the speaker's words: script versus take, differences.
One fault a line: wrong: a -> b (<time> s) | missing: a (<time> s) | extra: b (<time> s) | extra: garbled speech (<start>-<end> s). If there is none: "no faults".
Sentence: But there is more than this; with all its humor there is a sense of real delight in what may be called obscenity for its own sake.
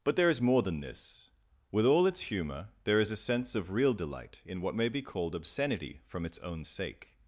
wrong: for -> from (6.1 s)